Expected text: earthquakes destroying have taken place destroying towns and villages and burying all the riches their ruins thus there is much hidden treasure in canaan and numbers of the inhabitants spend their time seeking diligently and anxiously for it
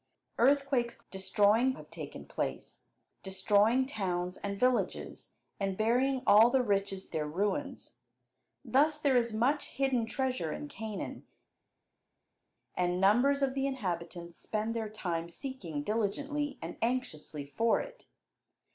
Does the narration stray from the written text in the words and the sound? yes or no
no